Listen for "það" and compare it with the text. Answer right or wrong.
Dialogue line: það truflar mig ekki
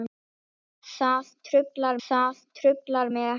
right